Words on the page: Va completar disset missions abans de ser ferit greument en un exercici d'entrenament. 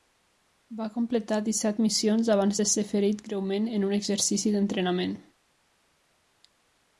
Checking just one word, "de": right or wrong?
right